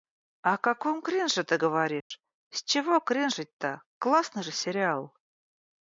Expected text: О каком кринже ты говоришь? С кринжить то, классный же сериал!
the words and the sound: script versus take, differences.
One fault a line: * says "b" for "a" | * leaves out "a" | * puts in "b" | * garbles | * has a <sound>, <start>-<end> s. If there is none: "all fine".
* has a dropout, 2.0-2.1 s
* puts in "чего"